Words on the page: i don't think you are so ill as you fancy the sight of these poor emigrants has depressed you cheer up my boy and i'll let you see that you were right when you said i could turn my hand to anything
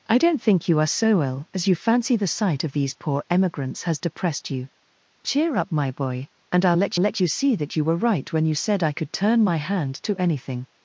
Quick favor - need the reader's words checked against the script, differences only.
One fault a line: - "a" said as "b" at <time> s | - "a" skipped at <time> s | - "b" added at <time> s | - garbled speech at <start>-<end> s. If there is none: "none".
- "let" added at 7.0 s